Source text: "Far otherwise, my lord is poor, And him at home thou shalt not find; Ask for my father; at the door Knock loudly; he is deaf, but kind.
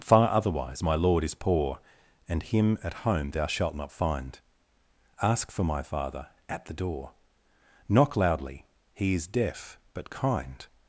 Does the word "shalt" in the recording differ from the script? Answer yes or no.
no